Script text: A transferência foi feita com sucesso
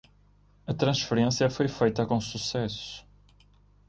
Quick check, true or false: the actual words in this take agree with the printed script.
true